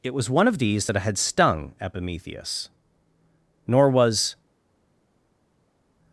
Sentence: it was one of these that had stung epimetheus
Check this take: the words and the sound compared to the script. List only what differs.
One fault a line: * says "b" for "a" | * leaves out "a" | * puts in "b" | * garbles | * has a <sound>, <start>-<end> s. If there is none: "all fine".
* puts in "nor was"